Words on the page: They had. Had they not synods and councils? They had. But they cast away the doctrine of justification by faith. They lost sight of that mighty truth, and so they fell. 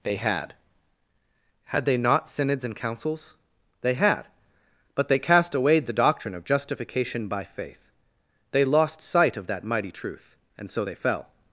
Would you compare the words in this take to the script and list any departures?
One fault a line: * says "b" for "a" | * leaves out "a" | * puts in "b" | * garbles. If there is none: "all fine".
all fine